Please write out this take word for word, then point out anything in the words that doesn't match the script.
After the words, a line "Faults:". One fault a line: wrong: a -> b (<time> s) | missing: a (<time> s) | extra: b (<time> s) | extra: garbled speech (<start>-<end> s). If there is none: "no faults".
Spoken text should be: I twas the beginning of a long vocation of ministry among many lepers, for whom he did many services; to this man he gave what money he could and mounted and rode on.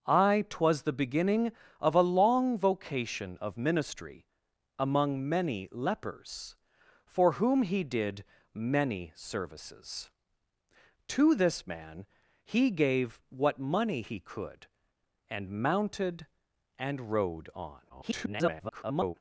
I twas the beginning of a long vocation of ministry among many lepers, for whom he did many services; to this man he gave what money he could and mounted and rode on. [garbled]
Faults:
extra: garbled speech (17.9-19.1 s)